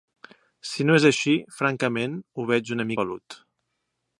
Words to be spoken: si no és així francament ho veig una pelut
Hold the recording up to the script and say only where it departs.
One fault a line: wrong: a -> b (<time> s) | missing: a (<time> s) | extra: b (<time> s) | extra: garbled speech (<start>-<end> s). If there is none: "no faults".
no faults